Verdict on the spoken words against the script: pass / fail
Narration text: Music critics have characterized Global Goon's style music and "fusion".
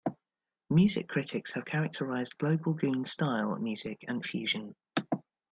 pass